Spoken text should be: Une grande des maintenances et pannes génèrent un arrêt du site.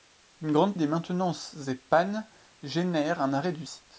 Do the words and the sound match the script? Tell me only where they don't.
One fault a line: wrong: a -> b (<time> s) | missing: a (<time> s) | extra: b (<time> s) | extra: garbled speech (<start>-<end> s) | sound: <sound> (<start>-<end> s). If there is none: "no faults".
no faults